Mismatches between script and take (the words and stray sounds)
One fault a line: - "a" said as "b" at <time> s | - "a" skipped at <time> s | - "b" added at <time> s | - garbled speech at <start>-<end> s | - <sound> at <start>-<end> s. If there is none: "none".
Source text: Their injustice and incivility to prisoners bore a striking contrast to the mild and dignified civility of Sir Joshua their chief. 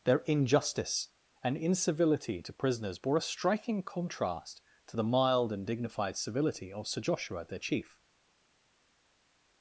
none